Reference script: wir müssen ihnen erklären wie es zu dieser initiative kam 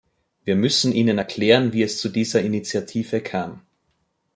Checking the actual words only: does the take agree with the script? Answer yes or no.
yes